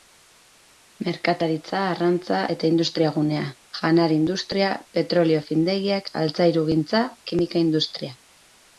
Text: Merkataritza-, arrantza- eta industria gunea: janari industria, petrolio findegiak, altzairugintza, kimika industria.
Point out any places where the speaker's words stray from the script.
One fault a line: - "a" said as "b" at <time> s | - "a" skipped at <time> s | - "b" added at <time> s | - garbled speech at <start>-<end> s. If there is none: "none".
none